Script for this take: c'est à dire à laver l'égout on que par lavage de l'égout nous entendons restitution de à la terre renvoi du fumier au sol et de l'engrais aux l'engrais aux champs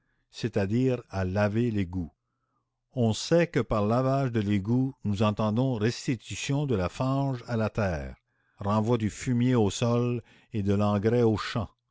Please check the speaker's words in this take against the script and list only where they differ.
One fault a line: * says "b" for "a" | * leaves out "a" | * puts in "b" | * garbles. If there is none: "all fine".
* puts in "sait"
* puts in "la fange"
* leaves out "l'engrais aux"